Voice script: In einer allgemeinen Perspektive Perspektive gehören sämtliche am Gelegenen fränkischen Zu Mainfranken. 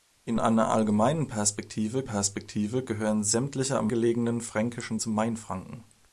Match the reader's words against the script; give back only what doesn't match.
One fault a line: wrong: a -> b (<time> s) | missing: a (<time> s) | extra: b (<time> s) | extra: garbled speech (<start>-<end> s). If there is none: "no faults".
no faults